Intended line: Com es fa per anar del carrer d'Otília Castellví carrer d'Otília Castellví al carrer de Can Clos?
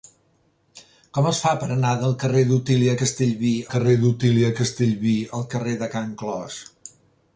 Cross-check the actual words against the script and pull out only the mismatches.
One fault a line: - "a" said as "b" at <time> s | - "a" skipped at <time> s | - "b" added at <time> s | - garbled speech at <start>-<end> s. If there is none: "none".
none